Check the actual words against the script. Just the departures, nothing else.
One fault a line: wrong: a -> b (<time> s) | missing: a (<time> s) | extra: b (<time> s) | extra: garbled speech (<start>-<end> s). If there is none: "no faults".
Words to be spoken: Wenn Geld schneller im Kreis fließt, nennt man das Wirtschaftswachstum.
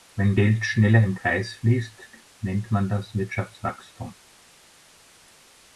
no faults